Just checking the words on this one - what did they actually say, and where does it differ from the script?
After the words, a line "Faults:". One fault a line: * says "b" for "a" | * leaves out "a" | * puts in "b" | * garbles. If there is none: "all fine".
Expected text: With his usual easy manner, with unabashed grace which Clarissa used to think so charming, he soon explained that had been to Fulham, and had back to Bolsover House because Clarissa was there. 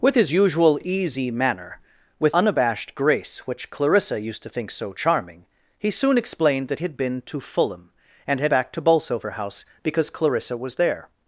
With his usual easy manner, with unabashed grace which Clarissa used to think so charming, he soon explained that had been to Fulham, and had back to Bolsover House because Clarissa was there.
Faults:
all fine